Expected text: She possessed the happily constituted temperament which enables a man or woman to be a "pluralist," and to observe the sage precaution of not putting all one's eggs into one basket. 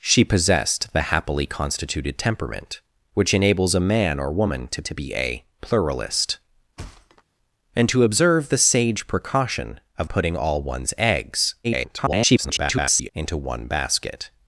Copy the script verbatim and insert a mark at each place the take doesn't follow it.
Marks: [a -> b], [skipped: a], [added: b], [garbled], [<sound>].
She possessed the happily constituted temperament which enables a man or woman to [added: to] be a "pluralist," [thud] and to observe the sage precaution of [skipped: not] putting all one's eggs [garbled] into one basket.